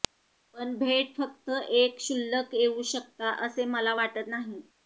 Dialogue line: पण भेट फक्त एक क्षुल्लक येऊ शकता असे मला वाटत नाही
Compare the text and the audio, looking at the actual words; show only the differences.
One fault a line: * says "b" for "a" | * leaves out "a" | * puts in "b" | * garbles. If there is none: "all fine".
all fine